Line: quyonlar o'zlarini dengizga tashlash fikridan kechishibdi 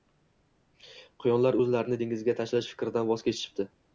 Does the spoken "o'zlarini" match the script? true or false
true